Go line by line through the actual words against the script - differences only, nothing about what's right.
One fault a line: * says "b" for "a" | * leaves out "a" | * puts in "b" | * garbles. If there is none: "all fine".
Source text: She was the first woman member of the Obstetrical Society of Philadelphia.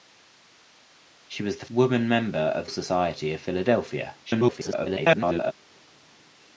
* leaves out "first"
* leaves out "the Obstetrical"
* garbles